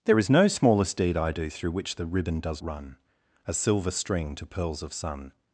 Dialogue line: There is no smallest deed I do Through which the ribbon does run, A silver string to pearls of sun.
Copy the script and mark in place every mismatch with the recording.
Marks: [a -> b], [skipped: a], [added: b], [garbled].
There is no smallest deed I do Through which the ribbon does run, A silver string to pearls of sun.